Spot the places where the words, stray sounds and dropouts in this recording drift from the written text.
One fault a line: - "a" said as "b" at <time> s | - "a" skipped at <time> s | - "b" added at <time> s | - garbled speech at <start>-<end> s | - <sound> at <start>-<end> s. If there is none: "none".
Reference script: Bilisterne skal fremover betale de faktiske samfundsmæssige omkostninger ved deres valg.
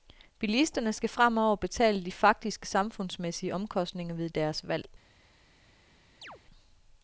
- chirp at 6.2-6.4 s